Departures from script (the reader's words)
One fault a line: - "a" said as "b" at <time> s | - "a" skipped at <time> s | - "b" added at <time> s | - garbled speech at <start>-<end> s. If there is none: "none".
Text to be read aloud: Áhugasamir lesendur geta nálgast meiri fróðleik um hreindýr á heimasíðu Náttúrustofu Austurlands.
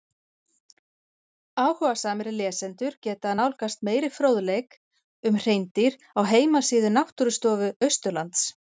none